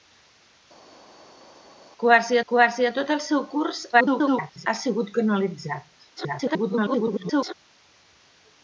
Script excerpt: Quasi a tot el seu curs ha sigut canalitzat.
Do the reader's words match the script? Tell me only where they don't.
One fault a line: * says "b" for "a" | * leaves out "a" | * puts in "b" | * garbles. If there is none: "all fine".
* puts in "quasi"
* garbles
* garbles